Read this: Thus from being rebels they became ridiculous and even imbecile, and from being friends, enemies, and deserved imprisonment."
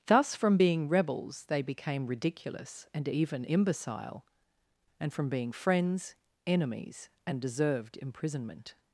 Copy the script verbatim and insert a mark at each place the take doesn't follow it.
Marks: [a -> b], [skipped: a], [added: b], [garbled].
Thus from being rebels they became ridiculous and even imbecile, and from being friends, enemies, and deserved imprisonment."